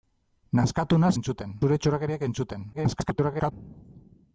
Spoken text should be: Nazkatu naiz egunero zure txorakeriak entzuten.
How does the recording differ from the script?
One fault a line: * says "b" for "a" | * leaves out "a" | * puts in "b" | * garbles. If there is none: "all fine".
* says "entzuten" for "egunero"
* garbles